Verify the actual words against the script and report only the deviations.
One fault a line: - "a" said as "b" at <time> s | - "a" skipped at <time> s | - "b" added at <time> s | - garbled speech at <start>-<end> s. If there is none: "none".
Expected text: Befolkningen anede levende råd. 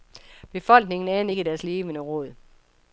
- "ikke deres" added at 1.3 s